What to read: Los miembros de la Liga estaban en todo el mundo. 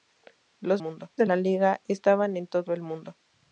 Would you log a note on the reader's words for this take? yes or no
yes